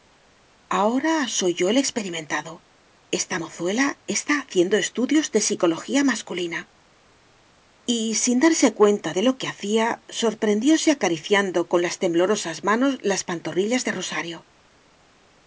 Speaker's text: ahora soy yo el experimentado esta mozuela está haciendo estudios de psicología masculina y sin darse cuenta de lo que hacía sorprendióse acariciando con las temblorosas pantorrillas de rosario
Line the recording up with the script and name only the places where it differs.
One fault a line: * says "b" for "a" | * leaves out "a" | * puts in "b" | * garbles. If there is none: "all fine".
* puts in "manos las"